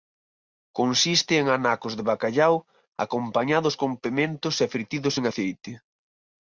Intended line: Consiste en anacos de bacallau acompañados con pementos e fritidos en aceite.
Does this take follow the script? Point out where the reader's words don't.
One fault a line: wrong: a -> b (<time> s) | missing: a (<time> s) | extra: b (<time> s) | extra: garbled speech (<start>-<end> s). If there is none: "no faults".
no faults